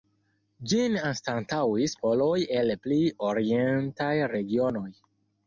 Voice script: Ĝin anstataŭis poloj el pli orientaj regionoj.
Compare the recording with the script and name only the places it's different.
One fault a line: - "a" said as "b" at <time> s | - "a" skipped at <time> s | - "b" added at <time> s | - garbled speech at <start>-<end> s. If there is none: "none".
none